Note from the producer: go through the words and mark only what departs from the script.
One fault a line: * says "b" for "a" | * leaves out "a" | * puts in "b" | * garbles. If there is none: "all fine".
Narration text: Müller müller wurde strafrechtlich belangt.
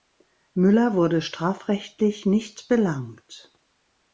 * leaves out "müller"
* puts in "nicht"